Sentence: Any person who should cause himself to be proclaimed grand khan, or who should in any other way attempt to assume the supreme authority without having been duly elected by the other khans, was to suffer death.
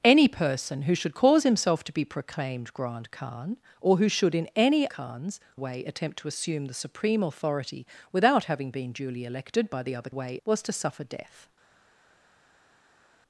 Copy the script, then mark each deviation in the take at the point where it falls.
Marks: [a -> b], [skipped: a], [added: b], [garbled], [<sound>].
Any person who should cause himself to be proclaimed grand khan, or who should in any [other -> khans] way attempt to assume the supreme authority without having been duly elected by the other [khans, -> way] was to suffer death.